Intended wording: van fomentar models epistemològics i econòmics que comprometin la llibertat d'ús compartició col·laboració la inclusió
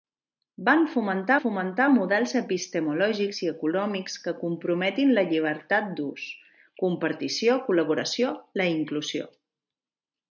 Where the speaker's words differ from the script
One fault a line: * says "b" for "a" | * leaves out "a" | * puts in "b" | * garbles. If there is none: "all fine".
* puts in "fomentar"